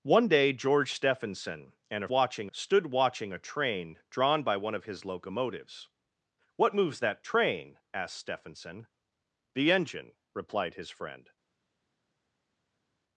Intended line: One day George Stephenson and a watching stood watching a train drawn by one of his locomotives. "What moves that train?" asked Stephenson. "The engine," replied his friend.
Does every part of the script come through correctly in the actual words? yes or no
yes